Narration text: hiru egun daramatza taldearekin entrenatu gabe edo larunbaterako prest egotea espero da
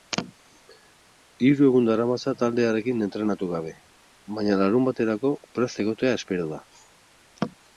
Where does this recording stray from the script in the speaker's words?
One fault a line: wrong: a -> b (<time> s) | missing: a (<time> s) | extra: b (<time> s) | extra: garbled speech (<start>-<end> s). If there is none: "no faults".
wrong: edo -> baina (4.4 s)